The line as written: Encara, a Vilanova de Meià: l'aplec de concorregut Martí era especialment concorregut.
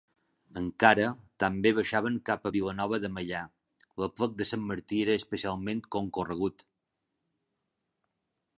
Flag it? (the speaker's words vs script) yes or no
yes